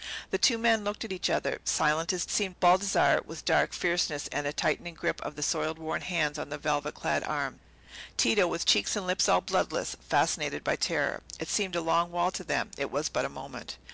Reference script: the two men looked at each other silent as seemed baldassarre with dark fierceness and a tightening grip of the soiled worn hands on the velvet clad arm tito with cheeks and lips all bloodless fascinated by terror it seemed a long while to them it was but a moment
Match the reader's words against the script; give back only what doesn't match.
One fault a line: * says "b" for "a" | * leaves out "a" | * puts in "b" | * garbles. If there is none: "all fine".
all fine